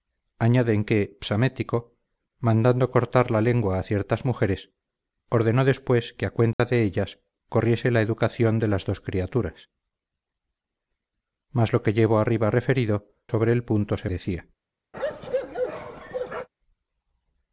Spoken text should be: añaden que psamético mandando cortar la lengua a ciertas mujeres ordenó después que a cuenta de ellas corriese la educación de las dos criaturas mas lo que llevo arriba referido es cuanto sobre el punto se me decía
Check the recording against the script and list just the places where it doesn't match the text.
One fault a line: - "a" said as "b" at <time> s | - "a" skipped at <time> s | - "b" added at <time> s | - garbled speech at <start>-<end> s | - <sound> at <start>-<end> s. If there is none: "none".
- dropout at 6.5-6.6 s
- "es cuanto" skipped at 13.1 s
- "me" skipped at 14.1 s
- bark at 14.9-16.5 s